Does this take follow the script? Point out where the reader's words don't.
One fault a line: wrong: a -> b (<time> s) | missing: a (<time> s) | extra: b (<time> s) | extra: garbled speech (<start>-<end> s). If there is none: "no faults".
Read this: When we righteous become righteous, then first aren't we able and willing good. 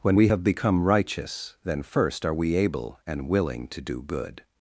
wrong: righteous -> have (0.3 s)
wrong: aren't -> are (2.2 s)
extra: to do (3.7 s)